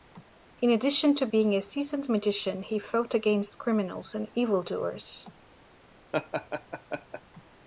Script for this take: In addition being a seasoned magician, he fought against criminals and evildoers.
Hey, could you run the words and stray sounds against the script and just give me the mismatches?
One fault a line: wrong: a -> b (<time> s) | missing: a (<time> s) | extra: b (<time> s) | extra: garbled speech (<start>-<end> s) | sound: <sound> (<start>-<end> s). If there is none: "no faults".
extra: to (1.2 s)
sound: laugh (6.1-7.2 s)